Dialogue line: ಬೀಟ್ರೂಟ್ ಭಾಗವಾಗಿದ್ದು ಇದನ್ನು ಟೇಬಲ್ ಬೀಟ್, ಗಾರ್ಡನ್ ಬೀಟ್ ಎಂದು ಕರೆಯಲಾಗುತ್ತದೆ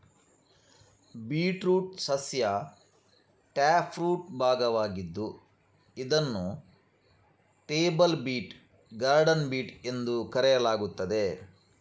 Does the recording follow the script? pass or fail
fail